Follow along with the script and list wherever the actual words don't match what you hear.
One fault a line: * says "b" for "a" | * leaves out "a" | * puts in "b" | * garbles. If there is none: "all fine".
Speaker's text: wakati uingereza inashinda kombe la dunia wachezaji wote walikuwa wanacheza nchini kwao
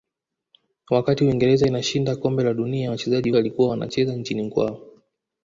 * leaves out "wote"